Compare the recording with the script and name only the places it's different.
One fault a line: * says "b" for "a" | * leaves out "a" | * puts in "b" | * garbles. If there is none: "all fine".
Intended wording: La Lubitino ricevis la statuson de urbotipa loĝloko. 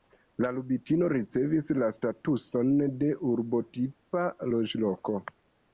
all fine